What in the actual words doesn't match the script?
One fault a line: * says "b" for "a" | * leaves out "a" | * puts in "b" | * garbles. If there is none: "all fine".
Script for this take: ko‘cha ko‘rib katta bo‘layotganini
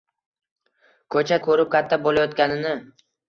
all fine